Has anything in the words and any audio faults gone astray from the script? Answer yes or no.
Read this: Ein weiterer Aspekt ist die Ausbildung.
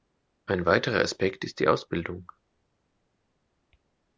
no